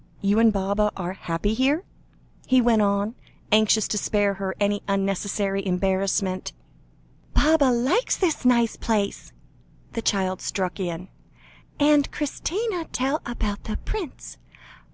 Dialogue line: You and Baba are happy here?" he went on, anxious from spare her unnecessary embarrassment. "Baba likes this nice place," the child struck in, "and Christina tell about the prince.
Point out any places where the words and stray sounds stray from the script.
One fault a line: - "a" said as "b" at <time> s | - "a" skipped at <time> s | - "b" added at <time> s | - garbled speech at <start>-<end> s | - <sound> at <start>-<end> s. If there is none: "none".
- "from" said as "to" at 3.9 s
- "any" added at 4.6 s